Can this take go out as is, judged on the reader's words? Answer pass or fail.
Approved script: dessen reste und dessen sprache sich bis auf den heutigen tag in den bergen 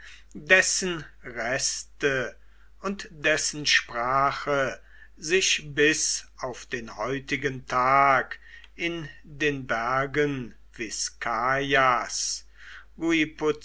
pass